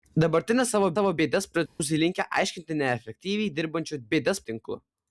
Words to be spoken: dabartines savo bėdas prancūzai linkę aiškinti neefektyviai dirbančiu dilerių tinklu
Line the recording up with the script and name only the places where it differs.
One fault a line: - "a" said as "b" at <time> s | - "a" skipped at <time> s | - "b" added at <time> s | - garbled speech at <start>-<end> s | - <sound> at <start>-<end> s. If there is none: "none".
- "savo" added at 1.0 s
- dropout at 1.7-1.8 s
- "dilerių" said as "bėdas" at 4.1 s